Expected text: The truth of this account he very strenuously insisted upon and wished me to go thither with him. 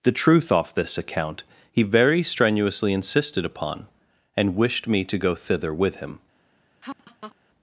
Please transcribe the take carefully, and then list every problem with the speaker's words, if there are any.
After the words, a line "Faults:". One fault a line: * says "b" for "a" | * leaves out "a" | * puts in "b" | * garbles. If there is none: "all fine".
The truth off this account he very strenuously insisted upon and wished me to go thither with him.
Faults:
* says "off" for "of"